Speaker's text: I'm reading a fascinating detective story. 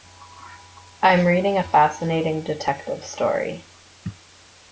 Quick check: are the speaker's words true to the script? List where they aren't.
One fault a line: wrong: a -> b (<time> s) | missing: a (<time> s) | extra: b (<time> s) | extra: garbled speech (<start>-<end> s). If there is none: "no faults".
no faults